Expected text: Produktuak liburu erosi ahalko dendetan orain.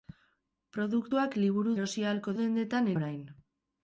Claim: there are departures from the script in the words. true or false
false